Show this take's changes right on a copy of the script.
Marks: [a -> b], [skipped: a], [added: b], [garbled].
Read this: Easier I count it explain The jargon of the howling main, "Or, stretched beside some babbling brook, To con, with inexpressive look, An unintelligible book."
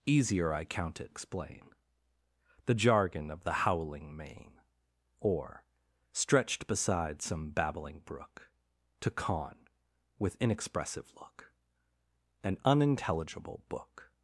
Easier I count it explain The jargon of the howling main, "Or, stretched beside some babbling brook, To con, with inexpressive look, An unintelligible book."